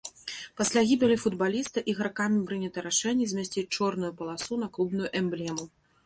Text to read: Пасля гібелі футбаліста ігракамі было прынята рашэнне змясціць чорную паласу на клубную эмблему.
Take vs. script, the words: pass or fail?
fail